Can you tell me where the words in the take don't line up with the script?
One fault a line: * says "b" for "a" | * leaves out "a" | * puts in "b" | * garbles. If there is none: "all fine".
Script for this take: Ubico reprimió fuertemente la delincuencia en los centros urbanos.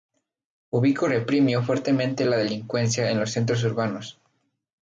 all fine